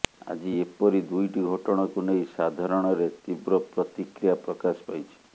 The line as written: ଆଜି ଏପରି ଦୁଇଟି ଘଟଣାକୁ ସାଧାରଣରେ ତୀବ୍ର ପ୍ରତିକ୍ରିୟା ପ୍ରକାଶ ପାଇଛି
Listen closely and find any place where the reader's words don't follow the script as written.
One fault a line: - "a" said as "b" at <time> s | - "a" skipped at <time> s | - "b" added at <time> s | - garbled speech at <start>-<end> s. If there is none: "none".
- "ନେଇ" added at 2.0 s